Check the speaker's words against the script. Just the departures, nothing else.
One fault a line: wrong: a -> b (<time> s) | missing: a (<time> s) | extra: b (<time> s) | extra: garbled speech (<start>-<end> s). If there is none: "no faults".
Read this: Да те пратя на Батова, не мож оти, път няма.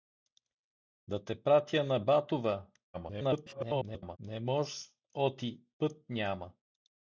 extra: garbled speech (2.9-4.2 s)